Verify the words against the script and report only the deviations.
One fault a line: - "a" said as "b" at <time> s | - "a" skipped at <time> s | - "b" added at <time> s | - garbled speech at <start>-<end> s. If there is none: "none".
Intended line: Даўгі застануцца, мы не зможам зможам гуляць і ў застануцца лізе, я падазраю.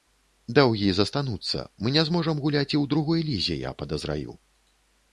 - "зможам" skipped at 2.4 s
- "застануцца" said as "другой" at 3.0 s